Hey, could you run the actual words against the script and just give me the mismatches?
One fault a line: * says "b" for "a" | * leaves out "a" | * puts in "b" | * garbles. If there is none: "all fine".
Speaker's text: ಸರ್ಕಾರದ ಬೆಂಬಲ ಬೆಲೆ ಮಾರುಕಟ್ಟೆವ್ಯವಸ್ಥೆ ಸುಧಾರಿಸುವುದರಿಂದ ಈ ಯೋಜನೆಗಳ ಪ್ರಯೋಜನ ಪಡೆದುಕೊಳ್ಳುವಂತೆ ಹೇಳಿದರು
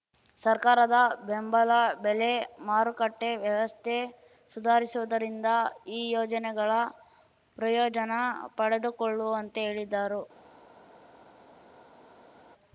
all fine